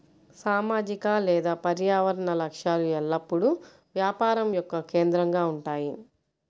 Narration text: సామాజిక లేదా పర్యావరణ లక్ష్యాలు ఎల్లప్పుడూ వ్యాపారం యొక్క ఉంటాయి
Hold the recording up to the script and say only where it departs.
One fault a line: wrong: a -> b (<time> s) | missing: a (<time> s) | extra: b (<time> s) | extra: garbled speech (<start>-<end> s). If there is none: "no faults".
extra: కేంద్రంగా (4.9 s)